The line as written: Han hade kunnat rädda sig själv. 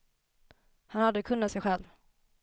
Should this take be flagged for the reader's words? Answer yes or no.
yes